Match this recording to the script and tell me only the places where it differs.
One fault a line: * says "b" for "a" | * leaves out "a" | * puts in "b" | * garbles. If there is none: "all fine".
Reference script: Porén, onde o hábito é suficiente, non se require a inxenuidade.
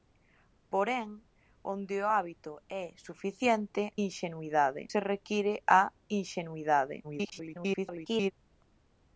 * says "inxenuidade" for "non"
* garbles